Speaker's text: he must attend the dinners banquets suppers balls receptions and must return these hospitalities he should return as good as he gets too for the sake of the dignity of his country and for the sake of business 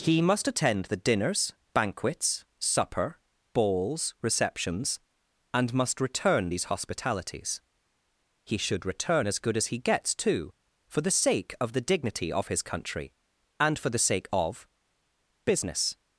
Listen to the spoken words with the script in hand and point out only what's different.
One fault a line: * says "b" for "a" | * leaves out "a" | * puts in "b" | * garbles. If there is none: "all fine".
* says "supper" for "suppers"